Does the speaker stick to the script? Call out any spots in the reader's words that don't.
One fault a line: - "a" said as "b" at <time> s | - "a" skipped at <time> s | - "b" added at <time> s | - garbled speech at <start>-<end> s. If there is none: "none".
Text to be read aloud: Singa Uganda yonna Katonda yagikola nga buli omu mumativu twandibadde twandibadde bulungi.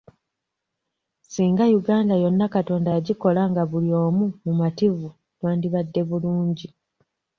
- "twandibadde" skipped at 6.0 s